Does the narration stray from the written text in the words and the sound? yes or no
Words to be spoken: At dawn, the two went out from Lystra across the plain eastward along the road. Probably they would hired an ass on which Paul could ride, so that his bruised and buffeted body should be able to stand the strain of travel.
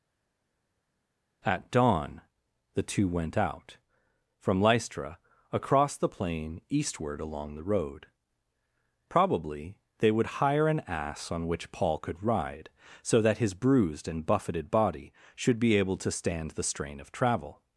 yes